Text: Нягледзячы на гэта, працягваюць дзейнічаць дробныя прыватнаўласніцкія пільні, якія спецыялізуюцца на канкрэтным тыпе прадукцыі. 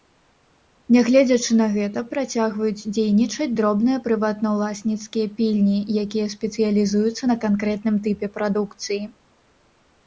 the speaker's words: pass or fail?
pass